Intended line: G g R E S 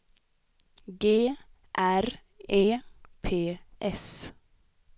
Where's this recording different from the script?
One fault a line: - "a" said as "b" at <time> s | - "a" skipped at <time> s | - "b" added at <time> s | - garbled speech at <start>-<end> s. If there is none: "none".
- "g" skipped at 1.4 s
- "P" added at 3.2 s